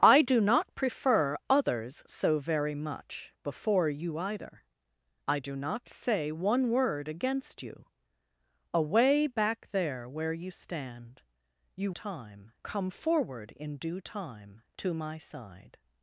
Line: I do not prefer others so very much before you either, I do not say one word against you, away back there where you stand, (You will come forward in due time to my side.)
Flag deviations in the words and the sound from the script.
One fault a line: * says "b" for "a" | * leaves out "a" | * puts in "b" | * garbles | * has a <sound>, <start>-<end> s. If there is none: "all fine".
* says "time" for "will"